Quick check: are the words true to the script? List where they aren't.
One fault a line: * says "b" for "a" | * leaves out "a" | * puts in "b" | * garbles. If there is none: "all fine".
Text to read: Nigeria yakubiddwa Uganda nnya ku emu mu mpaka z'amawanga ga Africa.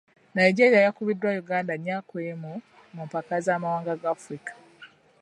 all fine